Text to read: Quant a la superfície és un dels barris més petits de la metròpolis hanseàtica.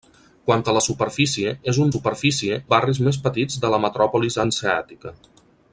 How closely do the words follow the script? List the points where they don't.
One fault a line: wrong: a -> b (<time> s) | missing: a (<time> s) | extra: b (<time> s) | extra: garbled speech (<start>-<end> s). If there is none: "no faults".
wrong: dels -> superfície (1.9 s)